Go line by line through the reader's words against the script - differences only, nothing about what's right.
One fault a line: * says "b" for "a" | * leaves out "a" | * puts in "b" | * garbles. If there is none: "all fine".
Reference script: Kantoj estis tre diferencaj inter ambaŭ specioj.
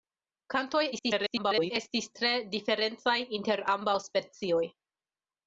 * garbles